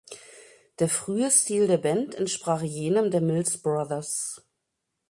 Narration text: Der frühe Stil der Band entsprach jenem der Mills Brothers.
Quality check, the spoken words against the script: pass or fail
pass